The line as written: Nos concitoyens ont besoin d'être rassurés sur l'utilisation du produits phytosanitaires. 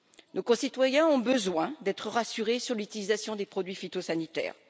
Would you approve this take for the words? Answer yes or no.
no